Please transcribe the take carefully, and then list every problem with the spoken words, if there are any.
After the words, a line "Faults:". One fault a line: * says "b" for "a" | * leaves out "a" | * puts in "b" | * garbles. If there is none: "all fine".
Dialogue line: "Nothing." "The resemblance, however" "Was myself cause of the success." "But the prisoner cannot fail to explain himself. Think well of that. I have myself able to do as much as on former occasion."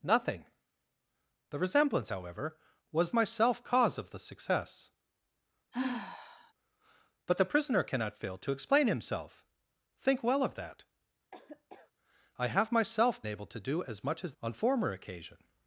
"Nothing." "The resemblance, however" "Was myself cause of the success." "But the prisoner cannot fail to explain himself. Think well of that. I have myself able to do as much as on former occasion."
Faults:
all fine